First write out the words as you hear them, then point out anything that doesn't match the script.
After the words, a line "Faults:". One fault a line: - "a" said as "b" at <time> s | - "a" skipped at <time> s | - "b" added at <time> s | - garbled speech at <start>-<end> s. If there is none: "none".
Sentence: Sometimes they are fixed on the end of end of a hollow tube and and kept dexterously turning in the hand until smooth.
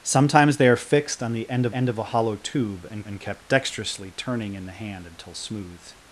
Sometimes they are fixed on the end of end of a hollow tube and and kept dexterously turning in the hand until smooth.
Faults:
none